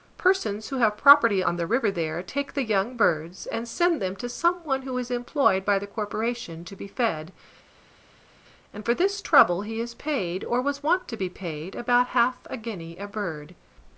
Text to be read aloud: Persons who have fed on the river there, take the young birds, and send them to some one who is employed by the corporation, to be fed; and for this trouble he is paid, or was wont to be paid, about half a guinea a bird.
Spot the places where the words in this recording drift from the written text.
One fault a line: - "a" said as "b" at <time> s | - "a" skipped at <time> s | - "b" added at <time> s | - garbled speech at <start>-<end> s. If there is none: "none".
- "fed" said as "property" at 1.0 s